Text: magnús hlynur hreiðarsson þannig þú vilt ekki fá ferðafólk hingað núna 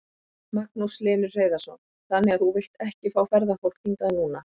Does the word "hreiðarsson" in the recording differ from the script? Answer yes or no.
no